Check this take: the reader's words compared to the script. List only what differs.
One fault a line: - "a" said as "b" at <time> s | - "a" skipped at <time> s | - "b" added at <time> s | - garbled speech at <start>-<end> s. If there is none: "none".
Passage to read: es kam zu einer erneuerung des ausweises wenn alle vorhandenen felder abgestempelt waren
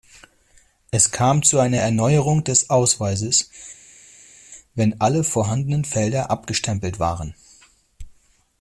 none